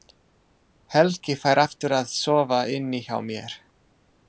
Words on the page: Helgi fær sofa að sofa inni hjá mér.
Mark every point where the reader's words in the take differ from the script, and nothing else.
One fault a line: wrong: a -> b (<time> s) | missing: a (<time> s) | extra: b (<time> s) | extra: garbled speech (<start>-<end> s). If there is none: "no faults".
wrong: sofa -> aftur (1.6 s)